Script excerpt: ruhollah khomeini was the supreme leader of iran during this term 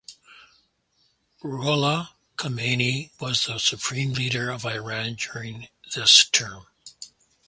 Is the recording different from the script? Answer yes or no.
no